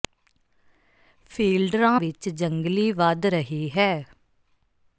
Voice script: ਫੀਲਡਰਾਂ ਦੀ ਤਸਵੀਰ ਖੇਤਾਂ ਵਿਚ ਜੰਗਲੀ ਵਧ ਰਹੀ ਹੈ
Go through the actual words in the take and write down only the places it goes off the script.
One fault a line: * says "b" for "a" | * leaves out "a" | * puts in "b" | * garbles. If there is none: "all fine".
* leaves out "ਦੀ ਤਸਵੀਰ ਖੇਤਾਂ"